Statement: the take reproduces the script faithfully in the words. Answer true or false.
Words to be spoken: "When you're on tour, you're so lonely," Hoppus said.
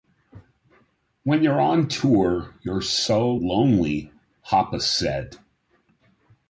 true